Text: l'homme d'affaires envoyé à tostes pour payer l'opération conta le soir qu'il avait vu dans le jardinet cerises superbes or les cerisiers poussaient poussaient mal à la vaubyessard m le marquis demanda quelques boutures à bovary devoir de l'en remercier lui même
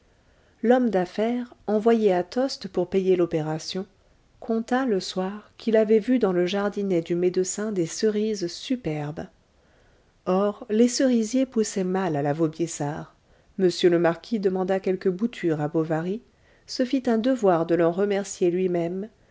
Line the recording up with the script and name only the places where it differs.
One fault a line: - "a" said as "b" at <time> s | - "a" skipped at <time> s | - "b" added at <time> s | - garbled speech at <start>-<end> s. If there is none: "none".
- "du médecin des" added at 7.0 s
- "poussaient" skipped at 11.8 s
- "se fit un" added at 16.6 s